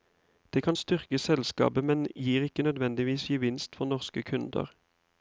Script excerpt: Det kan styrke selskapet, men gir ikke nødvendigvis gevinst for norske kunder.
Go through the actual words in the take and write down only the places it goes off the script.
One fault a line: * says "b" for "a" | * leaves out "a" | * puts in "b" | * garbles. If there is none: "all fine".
all fine